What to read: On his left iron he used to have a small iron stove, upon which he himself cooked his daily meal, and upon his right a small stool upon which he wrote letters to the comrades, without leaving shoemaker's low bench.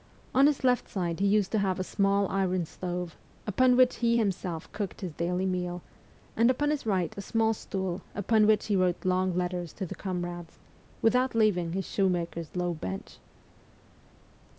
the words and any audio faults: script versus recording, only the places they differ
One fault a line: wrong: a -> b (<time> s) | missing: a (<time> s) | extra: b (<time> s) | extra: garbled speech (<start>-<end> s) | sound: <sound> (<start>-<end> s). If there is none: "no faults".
wrong: iron -> side (0.9 s)
extra: long (9.1 s)
extra: his (11.7 s)